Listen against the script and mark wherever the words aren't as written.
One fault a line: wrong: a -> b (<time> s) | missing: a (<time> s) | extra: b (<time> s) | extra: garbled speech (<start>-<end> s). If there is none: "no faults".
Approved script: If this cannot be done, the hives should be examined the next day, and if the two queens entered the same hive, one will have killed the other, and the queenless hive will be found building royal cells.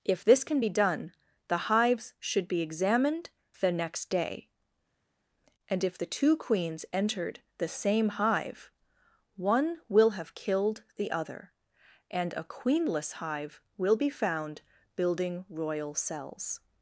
wrong: cannot -> can (0.4 s)
wrong: the -> a (12.3 s)